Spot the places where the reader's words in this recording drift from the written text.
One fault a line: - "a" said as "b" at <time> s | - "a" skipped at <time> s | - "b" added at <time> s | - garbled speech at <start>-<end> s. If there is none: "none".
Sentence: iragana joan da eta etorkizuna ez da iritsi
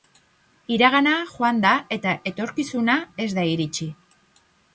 none